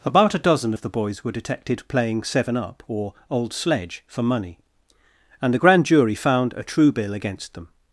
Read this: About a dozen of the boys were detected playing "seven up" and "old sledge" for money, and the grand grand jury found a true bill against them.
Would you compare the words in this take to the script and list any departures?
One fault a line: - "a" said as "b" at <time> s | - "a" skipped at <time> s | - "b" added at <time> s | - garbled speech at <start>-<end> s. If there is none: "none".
- "and" said as "or" at 2.9 s
- "grand" skipped at 5.9 s